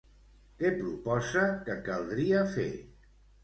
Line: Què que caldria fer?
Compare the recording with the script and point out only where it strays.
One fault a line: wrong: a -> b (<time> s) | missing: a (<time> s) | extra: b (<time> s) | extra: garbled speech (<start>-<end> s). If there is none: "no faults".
extra: proposa (0.8 s)